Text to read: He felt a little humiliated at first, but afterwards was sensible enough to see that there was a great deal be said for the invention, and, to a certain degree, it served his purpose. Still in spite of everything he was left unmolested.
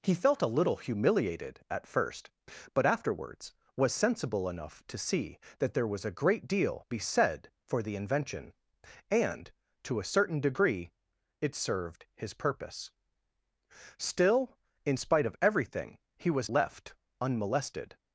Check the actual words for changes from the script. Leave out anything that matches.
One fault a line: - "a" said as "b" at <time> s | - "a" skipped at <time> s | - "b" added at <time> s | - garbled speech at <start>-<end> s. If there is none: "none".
none